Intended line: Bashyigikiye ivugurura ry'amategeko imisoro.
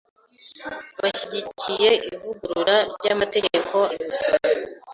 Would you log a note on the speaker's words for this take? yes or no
no